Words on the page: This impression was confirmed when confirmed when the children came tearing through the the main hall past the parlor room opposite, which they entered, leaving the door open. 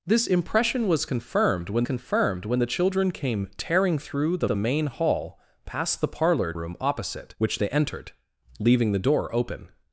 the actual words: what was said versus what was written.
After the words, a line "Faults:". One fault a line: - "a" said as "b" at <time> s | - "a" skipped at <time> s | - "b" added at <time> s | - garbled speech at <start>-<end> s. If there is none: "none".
This impression was confirmed when confirmed when the children came tearing through the the main hall past the parlor room opposite, which they entered, leaving the door open.
Faults:
none